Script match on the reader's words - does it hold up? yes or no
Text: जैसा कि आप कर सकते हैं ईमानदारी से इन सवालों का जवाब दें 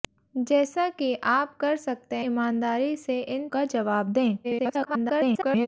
no